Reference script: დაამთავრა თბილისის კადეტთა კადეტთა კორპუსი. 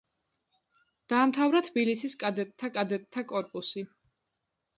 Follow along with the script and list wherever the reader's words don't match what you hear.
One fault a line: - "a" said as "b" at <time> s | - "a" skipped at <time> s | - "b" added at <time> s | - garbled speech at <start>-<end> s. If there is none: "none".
none